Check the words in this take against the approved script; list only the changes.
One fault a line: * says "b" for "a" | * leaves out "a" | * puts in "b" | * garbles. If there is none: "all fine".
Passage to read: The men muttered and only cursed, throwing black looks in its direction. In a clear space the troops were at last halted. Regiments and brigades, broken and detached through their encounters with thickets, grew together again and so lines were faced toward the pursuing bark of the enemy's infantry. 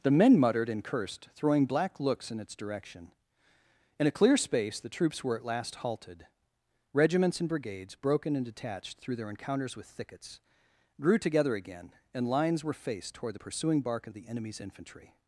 * leaves out "only"
* leaves out "so"